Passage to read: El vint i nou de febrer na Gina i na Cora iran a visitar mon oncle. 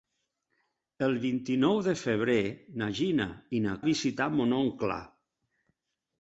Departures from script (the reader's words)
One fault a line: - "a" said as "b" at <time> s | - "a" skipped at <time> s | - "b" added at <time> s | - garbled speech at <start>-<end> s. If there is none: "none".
- "Cora iran" skipped at 3.8 s